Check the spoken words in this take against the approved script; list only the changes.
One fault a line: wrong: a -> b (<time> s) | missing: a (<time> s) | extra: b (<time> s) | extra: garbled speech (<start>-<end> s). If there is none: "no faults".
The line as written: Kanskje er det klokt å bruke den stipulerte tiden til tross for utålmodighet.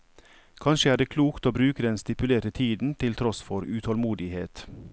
no faults